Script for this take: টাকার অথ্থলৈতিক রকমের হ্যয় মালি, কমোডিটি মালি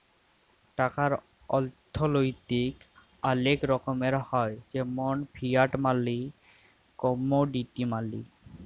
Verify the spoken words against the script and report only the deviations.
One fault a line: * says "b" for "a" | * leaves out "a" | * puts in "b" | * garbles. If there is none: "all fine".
* puts in "অলেক"
* puts in "যেমল ফিয়াট"